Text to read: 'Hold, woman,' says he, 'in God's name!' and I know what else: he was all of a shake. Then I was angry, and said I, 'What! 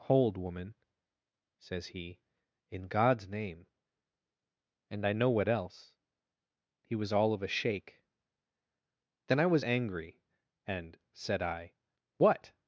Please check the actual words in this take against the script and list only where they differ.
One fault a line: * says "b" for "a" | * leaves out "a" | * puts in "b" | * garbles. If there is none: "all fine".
all fine